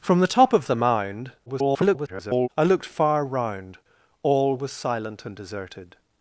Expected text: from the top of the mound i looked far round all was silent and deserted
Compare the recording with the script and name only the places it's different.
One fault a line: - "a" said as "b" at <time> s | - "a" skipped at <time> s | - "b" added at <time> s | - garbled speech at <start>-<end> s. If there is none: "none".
- garbled speech at 1.5-2.5 s